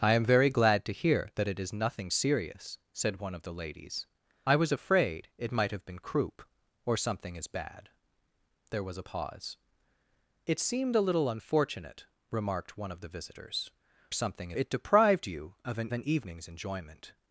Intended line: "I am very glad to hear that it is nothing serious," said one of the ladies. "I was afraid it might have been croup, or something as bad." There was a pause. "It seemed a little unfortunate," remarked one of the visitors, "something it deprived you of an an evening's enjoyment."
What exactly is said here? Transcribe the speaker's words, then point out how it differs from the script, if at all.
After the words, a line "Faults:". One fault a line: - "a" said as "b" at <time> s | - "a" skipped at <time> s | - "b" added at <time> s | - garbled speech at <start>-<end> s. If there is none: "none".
"I am very glad to hear that it is nothing serious," said one of the ladies. "I was afraid it might have been croup, or something as bad." There was a pause. "It seemed a little unfortunate," remarked one of the visitors, "something it deprived you of an an evening's enjoyment."
Faults:
none